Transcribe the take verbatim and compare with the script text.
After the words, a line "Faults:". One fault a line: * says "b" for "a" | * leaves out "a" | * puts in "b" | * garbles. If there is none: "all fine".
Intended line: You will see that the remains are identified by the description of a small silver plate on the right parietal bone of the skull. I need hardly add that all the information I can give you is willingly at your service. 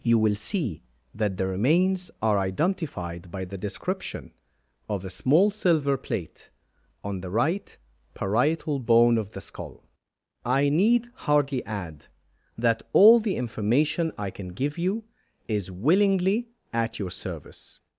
You will see that the remains are identified by the description of a small silver plate on the right parietal bone of the skull. I need hardly add that all the information I can give you is willingly at your service.
Faults:
all fine